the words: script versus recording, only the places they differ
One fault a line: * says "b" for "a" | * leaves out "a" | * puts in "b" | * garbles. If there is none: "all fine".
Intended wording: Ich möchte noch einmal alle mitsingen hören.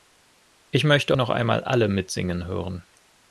all fine